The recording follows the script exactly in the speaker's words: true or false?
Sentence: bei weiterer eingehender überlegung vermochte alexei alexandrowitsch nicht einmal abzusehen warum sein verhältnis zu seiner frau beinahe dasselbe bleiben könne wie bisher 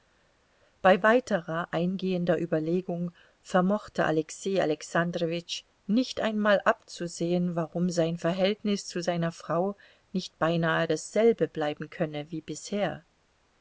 false